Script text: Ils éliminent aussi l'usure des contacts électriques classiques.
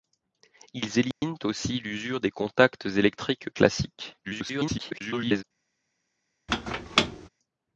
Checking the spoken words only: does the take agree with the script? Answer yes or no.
no